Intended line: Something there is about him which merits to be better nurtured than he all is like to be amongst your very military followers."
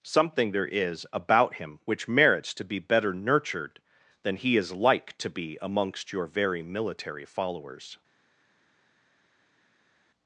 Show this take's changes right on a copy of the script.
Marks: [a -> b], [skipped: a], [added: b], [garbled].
Something there is about him which merits to be better nurtured than he [skipped: all] is like to be amongst your very military followers."